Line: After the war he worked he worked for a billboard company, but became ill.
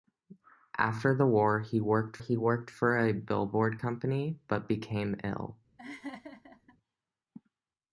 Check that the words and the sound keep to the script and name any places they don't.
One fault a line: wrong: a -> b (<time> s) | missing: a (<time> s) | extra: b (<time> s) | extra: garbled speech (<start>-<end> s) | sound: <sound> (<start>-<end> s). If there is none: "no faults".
sound: laugh (5.8-6.8 s)